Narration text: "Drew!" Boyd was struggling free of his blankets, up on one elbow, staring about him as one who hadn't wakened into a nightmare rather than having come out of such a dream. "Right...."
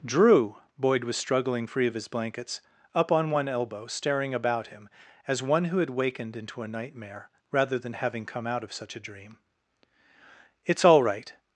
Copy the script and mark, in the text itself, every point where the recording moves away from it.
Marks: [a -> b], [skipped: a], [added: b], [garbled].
"Drew!" Boyd was struggling free of his blankets, up on one elbow, staring about him as one who [hadn't -> had] wakened into a nightmare rather than having come out of such a dream. [added: It's all] "Right...."